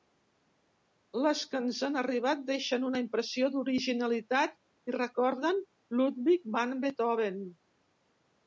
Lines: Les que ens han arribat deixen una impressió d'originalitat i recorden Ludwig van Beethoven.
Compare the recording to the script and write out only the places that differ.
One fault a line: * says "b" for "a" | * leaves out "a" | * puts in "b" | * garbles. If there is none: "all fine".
all fine